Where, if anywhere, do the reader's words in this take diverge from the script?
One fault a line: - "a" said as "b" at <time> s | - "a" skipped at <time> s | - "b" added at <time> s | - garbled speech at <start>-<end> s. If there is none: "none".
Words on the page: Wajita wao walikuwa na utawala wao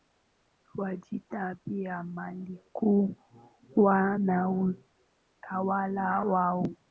- "wao" said as "pia" at 1.6 s